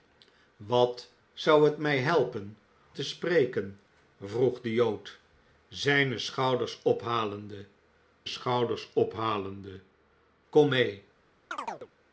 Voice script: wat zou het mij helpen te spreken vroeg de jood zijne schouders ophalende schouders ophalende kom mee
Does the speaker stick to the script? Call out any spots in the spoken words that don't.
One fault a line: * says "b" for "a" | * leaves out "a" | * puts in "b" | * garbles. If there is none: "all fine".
all fine